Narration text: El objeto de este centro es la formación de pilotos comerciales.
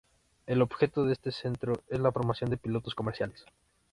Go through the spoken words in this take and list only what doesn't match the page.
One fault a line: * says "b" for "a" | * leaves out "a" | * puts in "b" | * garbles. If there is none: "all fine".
all fine